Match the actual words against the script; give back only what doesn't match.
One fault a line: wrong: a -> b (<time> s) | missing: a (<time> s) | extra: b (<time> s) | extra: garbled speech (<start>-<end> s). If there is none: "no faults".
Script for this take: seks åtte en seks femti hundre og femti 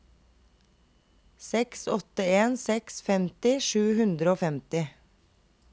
extra: sju (3.7 s)